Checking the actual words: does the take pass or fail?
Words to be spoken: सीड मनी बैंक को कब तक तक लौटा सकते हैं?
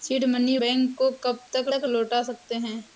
pass